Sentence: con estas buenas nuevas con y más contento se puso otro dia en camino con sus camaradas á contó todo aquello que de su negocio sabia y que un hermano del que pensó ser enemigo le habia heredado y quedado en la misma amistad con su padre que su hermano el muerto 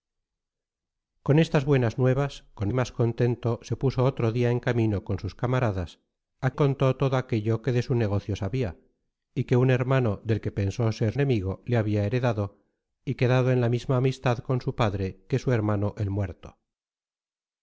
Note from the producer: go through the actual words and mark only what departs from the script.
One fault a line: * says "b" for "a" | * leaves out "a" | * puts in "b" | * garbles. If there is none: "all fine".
all fine